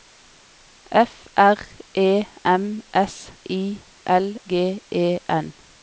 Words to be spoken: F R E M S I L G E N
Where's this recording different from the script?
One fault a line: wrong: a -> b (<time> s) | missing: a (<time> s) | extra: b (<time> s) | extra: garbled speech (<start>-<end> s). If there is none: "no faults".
no faults